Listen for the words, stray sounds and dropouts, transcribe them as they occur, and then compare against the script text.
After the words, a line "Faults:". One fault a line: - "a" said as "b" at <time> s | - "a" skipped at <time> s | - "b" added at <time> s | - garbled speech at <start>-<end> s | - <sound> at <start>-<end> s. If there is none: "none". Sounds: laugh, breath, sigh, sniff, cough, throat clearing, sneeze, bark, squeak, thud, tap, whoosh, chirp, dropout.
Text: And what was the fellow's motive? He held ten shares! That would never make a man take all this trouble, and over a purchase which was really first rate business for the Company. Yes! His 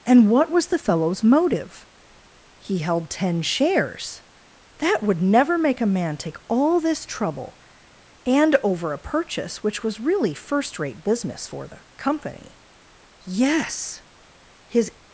And what was the fellow's motive? He held ten shares! That would never make a man take all this trouble, and over a purchase which was really first rate business for the Company. Yes! His
Faults:
none